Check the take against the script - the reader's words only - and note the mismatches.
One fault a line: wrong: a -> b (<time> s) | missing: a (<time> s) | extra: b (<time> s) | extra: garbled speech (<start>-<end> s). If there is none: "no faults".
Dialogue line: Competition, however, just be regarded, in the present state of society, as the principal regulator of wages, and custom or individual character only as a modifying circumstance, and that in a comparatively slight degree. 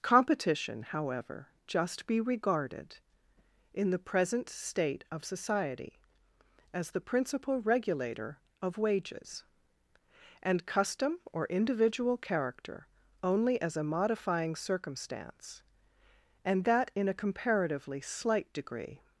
no faults